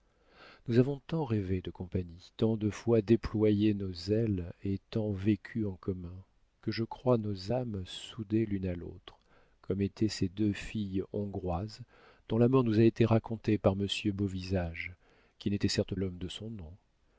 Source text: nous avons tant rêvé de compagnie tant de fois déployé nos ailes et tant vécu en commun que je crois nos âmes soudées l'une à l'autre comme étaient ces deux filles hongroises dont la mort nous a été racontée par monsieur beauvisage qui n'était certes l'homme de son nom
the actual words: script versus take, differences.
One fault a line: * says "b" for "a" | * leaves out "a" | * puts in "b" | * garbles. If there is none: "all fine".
all fine